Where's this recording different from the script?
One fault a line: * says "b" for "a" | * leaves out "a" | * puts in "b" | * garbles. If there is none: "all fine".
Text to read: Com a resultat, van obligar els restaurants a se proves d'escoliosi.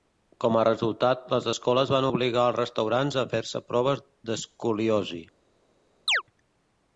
* puts in "les escoles"
* puts in "fer"